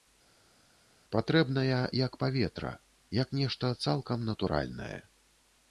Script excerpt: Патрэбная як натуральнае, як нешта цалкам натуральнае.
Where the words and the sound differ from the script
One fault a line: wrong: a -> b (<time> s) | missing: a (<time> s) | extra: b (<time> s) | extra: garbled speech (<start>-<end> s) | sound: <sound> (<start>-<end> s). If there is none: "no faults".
wrong: натуральнае -> паветра (2.2 s)